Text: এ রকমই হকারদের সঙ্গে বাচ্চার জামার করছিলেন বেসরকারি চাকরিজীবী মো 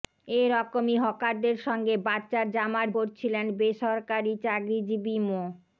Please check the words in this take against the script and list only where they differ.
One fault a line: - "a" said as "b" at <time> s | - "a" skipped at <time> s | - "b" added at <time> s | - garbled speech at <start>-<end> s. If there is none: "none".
none